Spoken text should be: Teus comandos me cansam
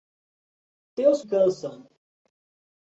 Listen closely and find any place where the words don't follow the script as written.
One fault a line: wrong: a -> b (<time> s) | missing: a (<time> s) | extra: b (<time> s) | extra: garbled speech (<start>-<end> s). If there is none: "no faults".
missing: comandos me (1.2 s)